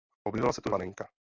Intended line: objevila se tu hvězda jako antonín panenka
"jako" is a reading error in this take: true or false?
true